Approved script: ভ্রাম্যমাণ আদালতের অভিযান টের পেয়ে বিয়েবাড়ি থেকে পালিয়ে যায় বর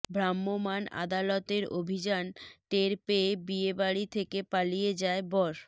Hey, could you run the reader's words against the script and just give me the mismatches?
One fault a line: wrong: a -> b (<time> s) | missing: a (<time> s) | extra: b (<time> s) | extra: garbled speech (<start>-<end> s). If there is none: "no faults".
no faults